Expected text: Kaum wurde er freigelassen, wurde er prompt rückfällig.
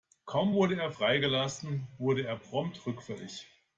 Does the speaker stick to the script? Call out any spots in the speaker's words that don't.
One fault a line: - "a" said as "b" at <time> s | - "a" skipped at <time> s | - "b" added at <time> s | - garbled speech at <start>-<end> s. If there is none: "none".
none